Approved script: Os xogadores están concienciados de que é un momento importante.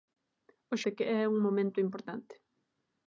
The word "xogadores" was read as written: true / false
false